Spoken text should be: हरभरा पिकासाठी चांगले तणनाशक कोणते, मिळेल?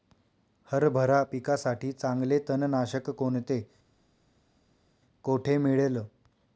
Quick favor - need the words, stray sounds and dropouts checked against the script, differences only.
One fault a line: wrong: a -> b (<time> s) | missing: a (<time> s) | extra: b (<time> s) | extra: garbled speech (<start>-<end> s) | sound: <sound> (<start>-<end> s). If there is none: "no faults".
extra: कोठे (5.2 s)